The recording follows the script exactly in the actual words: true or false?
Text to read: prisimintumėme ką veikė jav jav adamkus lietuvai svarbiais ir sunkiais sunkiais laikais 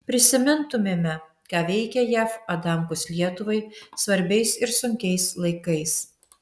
false